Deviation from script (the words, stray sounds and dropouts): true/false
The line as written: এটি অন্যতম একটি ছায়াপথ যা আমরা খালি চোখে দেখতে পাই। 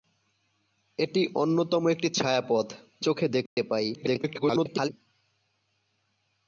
true